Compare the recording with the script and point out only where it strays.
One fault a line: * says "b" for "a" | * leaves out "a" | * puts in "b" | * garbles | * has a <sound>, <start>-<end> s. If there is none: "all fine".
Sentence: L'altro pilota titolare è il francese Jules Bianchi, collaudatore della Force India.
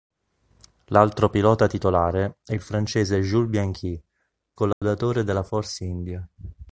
* has a dropout, 4.7-4.8 s